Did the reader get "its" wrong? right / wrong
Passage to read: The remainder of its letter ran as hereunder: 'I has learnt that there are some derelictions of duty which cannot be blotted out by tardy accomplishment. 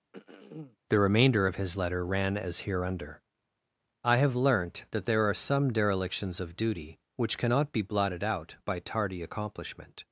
wrong